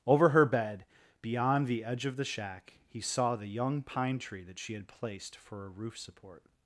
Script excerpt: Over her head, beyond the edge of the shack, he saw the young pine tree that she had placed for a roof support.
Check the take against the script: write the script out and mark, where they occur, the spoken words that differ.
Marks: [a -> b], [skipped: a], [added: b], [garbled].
Over her [head, -> bed] beyond the edge of the shack, he saw the young pine tree that she had placed for a roof support.